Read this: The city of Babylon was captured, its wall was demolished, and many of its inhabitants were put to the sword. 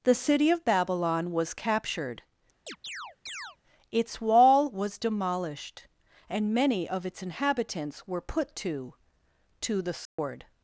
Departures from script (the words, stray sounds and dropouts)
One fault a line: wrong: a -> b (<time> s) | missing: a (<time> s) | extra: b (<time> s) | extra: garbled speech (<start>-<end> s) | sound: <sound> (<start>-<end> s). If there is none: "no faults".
sound: chirp (2.7-3.6 s)
extra: to (9.6 s)
sound: dropout (10.1-10.2 s)